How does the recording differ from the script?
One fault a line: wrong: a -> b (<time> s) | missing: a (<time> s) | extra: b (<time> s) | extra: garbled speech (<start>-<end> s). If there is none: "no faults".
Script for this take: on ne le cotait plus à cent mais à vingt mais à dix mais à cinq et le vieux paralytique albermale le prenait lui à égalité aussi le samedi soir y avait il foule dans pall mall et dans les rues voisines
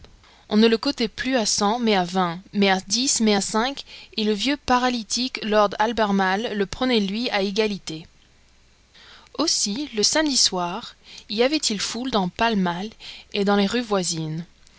extra: lord (5.4 s)